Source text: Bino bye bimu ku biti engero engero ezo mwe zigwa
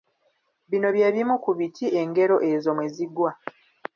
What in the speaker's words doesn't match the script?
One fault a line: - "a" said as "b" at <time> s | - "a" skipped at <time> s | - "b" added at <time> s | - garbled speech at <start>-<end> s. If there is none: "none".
- "engero" skipped at 2.4 s